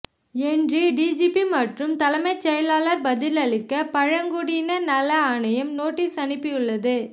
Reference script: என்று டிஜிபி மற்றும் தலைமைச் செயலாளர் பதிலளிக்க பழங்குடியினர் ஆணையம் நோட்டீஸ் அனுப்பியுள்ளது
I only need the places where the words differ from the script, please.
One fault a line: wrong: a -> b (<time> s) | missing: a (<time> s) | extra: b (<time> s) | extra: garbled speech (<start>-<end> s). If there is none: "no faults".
extra: நல (4.9 s)